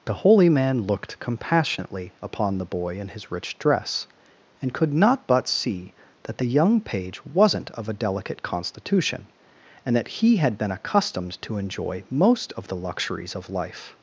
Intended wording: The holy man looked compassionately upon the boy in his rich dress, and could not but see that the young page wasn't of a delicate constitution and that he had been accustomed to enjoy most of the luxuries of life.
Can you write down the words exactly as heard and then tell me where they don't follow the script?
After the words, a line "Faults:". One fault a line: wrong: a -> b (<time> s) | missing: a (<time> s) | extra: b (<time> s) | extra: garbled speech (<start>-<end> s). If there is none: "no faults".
The holy man looked compassionately upon the boy in his rich dress, and could not but see that the young page wasn't of a delicate constitution and that he had been accustomed to enjoy most of the luxuries of life.
Faults:
no faults